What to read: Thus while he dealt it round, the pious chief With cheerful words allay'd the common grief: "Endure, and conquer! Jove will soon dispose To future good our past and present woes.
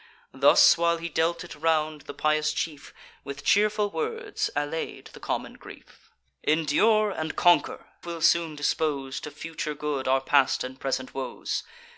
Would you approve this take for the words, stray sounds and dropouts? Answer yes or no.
no